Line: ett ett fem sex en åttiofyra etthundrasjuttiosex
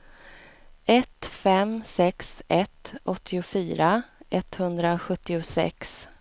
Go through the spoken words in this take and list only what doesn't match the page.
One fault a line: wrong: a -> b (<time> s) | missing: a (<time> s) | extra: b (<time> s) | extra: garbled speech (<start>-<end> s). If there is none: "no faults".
missing: ett (1.2 s)
wrong: en -> ett (2.5 s)